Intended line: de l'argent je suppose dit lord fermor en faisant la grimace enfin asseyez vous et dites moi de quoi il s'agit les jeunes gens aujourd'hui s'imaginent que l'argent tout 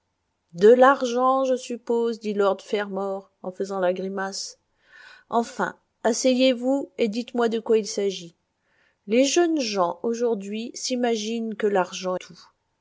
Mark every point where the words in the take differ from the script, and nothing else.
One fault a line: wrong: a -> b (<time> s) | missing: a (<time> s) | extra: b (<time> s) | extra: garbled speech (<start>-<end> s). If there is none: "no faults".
no faults